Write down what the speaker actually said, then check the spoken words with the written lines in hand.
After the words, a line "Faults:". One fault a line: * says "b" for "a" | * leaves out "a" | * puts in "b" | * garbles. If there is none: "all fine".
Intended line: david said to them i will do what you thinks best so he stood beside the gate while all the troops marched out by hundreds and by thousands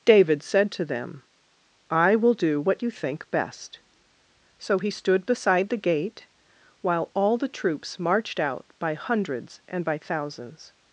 david said to them i will do what you think best so he stood beside the gate while all the troops marched out by hundreds and by thousands
Faults:
* says "think" for "thinks"